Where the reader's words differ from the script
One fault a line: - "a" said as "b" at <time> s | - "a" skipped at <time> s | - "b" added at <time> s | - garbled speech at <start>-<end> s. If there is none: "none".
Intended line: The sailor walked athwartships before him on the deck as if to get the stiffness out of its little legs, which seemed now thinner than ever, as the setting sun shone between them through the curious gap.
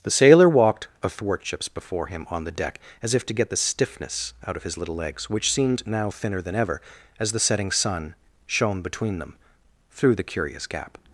- "its" said as "his" at 4.6 s